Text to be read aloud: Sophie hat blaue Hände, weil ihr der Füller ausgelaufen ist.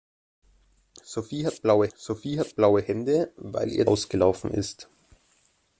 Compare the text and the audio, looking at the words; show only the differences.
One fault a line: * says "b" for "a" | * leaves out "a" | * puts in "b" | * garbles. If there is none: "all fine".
* puts in "sophie hat blaue"
* leaves out "der Füller"